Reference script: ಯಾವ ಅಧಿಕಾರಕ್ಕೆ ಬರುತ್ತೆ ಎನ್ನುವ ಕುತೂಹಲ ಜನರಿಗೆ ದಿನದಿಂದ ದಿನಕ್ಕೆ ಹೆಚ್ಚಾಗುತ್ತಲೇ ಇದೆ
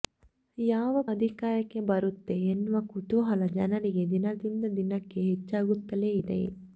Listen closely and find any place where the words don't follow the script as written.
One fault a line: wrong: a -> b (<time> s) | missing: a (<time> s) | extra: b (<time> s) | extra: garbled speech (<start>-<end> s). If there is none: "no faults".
no faults